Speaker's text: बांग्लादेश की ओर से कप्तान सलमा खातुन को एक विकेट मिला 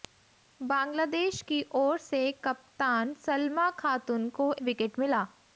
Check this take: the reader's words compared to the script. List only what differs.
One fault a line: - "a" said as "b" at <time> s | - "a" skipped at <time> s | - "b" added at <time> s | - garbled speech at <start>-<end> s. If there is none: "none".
- "एक" skipped at 4.5 s